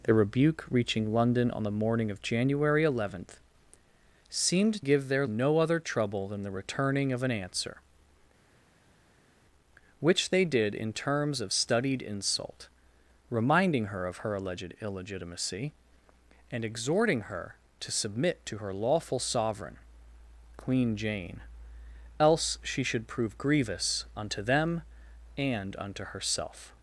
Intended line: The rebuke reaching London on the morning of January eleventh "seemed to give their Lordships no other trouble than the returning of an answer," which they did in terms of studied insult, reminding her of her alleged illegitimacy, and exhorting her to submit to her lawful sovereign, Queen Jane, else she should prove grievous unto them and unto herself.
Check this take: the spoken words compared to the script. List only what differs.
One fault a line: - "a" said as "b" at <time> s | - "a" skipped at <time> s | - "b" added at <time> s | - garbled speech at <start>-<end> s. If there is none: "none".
- "to" skipped at 4.8 s
- "Lordships" skipped at 5.3 s